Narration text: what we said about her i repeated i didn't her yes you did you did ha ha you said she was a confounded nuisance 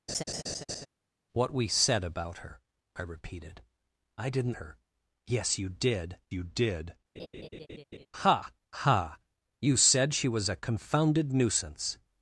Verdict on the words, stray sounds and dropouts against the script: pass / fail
fail